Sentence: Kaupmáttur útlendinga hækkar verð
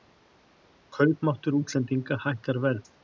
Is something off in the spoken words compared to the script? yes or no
no